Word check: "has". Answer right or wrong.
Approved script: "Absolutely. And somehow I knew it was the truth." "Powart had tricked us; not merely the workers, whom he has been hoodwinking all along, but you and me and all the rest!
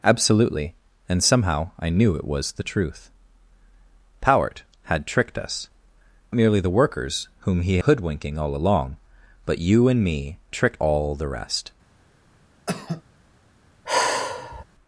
wrong